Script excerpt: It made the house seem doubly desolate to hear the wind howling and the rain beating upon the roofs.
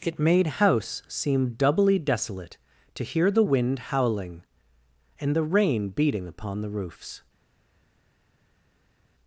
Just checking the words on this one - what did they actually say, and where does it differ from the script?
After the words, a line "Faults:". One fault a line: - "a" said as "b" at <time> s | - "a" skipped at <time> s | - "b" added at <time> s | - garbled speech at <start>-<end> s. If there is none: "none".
It made house seem doubly desolate to hear the wind howling and the rain beating upon the roofs.
Faults:
- "the" skipped at 0.5 s